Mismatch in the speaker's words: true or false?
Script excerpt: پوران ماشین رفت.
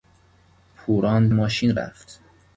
false